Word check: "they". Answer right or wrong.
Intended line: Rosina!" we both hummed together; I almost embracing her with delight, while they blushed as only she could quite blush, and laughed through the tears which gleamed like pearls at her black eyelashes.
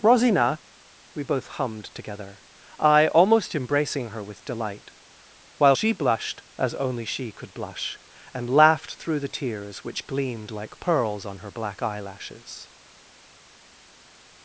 wrong